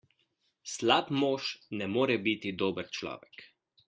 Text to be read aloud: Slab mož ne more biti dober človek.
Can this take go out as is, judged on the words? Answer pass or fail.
pass